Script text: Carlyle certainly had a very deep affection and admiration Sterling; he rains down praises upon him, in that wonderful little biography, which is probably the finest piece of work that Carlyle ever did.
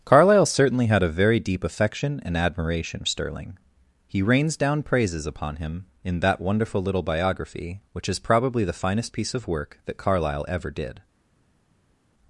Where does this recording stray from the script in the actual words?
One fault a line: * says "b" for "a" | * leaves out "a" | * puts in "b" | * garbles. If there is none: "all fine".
all fine